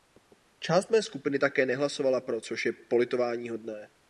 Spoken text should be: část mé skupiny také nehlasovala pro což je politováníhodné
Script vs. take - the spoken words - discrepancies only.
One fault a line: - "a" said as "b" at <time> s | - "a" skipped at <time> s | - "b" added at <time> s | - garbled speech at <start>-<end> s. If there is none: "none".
none